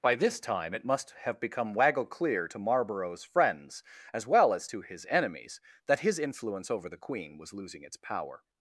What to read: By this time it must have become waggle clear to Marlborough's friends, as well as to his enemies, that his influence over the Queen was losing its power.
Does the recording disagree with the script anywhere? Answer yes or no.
no